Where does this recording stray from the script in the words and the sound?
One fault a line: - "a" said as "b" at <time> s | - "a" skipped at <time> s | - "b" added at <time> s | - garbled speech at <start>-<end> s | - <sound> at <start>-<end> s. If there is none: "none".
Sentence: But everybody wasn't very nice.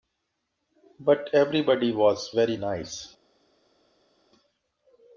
- "wasn't" said as "was" at 1.9 s